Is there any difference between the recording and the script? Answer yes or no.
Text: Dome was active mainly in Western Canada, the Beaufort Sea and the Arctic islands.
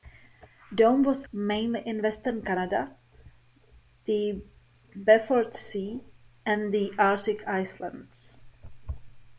yes